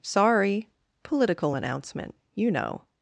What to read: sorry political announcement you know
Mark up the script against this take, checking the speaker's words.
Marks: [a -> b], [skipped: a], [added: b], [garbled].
sorry political announcement you know